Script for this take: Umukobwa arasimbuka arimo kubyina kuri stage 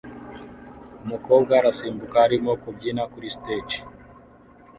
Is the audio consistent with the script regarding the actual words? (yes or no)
yes